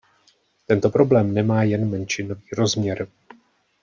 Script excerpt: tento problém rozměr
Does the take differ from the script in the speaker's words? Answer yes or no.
yes